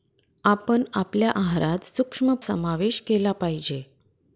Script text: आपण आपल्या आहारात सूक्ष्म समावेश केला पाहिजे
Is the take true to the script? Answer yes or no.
yes